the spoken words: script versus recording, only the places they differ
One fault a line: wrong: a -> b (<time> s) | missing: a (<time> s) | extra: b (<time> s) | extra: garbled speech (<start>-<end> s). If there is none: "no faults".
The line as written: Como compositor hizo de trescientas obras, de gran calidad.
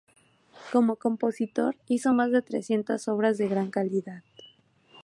extra: más (2.1 s)